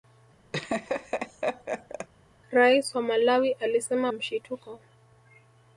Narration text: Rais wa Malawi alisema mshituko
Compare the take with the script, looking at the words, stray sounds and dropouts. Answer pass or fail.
fail